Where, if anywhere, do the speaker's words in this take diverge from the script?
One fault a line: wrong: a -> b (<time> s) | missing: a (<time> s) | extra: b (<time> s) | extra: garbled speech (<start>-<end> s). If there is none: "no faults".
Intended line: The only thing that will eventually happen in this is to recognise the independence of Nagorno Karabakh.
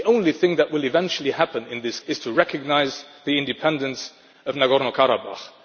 no faults